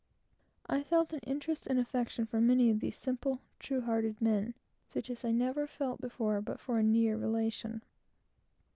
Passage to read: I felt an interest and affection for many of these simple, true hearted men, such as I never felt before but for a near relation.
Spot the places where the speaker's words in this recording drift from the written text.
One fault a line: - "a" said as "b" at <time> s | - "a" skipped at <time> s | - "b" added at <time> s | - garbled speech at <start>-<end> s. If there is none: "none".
none